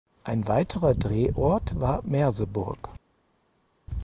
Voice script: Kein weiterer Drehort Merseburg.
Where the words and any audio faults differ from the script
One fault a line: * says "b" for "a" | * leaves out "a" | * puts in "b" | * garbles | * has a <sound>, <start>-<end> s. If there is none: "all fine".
* says "Ein" for "Kein"
* puts in "war"